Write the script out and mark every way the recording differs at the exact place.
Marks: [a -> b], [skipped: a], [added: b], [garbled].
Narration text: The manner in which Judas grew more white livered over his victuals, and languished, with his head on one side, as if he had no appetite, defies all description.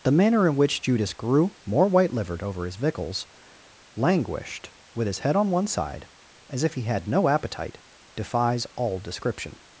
The manner in which Judas grew more white livered over his victuals, [skipped: and] languished, with his head on one side, as if he had no appetite, defies all description.